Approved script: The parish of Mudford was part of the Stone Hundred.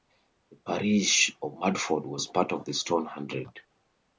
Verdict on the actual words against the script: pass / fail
pass